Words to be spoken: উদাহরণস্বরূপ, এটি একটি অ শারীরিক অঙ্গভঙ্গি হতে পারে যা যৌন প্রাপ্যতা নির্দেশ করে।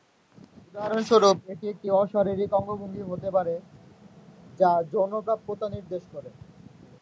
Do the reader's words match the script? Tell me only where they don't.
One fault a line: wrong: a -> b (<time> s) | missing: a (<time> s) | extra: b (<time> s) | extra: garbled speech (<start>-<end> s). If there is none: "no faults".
no faults